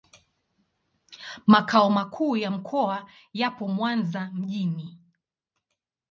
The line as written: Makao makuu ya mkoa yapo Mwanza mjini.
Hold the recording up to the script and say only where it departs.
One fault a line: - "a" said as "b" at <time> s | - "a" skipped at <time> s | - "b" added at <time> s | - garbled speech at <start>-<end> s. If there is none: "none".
none